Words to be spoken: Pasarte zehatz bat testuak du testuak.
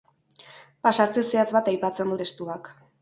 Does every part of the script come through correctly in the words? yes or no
no